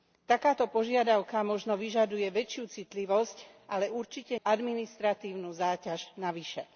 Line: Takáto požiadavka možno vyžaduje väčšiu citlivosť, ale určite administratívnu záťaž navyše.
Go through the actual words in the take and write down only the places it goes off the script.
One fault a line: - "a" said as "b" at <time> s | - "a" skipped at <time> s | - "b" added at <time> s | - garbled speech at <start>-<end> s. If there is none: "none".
none